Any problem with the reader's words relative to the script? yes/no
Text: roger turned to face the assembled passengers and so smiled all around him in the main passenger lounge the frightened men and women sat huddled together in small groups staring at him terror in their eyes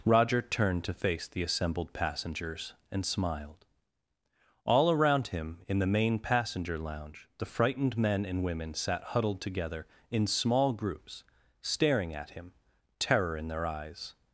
yes